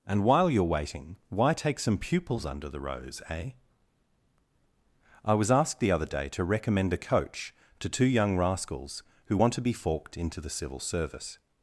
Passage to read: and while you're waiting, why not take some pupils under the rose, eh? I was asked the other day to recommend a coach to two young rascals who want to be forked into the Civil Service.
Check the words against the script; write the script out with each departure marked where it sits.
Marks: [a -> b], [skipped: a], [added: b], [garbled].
and while you're waiting, why [skipped: not] take some pupils under the rose, eh? I was asked the other day to recommend a coach to two young rascals who want to be forked into the Civil Service.